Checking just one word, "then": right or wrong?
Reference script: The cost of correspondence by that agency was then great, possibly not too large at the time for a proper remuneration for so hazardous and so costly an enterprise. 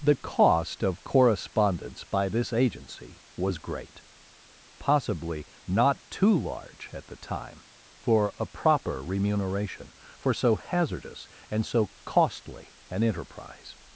wrong